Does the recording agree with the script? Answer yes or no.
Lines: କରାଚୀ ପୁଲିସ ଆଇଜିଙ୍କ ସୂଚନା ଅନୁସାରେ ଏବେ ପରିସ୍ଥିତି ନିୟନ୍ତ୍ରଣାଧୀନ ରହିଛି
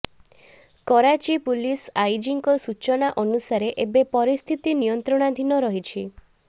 yes